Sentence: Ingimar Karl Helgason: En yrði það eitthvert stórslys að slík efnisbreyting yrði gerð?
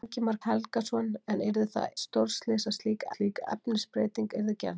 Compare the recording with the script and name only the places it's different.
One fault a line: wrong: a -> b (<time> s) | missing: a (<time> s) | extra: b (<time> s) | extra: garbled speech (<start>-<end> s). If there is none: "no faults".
missing: Karl (0.4 s)
missing: eitthvert (1.9 s)
extra: slík (3.1 s)